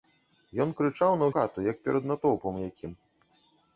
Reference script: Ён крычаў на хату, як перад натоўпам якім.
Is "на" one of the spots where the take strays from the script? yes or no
no